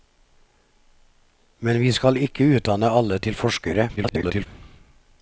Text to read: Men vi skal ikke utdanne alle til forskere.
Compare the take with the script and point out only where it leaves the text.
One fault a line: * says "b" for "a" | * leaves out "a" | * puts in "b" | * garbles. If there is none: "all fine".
* garbles